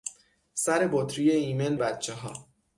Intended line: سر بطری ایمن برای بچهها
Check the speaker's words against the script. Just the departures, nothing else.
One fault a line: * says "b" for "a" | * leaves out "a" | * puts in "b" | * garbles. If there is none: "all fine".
* leaves out "برای"